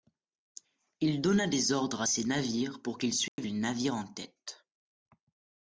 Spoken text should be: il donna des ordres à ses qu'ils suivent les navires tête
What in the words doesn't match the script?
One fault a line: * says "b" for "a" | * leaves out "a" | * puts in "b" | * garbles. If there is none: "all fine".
* puts in "navires pour"
* puts in "en"